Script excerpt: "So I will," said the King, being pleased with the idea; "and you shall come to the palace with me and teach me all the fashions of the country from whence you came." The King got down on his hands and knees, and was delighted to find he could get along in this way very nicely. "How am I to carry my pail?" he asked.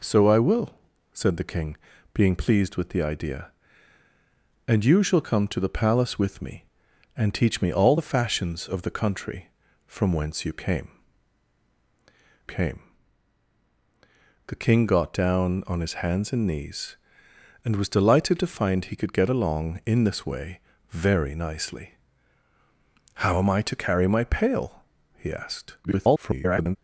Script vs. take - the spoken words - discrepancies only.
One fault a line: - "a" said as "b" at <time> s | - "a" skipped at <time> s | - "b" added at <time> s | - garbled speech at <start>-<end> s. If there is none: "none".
- "came" added at 12.4 s
- garbled speech at 25.8-26.8 s